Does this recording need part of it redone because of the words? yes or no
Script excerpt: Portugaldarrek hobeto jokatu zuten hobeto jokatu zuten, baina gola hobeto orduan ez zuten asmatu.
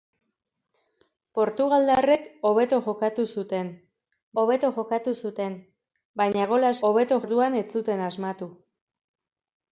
no